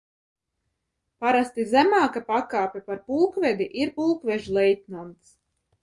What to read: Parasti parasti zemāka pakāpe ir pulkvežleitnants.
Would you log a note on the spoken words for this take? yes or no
yes